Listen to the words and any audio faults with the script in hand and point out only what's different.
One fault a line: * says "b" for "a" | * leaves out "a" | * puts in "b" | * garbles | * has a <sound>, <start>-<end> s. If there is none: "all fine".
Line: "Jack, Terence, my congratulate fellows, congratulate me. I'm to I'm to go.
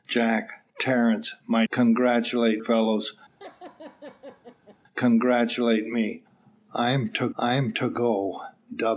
* has a laugh, 3.4-4.8 s